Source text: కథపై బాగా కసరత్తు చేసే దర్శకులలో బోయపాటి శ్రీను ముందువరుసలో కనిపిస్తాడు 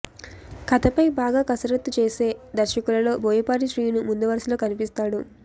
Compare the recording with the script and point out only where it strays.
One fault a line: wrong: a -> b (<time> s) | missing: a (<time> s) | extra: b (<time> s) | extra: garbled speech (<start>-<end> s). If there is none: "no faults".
no faults